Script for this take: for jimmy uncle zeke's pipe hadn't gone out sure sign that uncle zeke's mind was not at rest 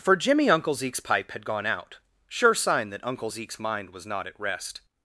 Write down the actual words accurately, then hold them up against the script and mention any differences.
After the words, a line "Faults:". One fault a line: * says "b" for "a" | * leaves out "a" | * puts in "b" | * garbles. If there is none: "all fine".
for jimmy uncle zeke's pipe had gone out sure sign that uncle zeke's mind was not at rest
Faults:
* says "had" for "hadn't"